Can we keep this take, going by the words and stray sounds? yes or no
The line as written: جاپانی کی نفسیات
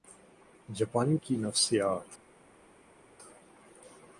yes